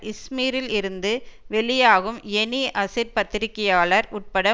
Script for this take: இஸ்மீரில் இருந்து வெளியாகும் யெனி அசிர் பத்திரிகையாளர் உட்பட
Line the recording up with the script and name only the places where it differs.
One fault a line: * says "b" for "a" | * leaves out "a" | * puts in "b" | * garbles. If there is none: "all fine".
all fine